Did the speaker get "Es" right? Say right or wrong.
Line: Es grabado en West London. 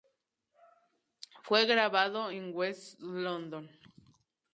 wrong